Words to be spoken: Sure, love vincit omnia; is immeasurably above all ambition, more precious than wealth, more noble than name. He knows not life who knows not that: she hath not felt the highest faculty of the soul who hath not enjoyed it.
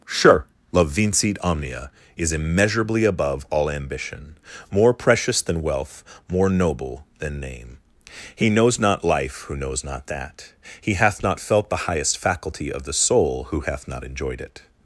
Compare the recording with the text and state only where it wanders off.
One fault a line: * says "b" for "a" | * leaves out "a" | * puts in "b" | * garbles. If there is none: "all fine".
* says "he" for "she"